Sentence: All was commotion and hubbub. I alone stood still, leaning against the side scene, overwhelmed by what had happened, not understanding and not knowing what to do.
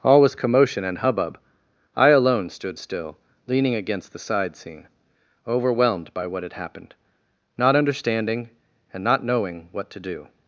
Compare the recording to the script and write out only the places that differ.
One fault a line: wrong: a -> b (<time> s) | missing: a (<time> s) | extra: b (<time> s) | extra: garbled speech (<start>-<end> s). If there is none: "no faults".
no faults